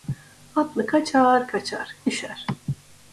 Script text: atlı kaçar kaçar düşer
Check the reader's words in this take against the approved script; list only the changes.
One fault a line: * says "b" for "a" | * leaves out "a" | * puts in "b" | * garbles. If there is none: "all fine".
all fine